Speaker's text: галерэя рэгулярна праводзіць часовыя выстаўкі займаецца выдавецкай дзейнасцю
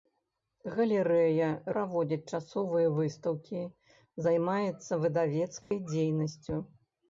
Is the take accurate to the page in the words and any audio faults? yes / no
no